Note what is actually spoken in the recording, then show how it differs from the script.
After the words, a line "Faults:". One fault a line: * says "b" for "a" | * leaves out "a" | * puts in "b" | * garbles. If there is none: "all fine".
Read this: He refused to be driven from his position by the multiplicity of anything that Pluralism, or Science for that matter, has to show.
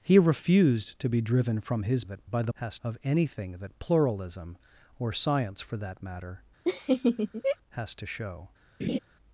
He refused to be driven from his that by the has of anything that Pluralism, or Science for that matter, has to show.
Faults:
* says "that" for "position"
* says "has" for "multiplicity"